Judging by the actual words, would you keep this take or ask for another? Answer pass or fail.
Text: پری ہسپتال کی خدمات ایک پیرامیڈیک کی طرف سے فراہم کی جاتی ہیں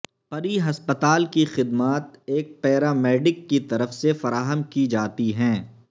pass